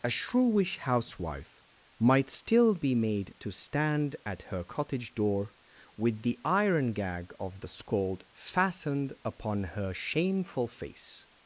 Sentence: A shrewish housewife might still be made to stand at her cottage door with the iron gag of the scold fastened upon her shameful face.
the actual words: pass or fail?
pass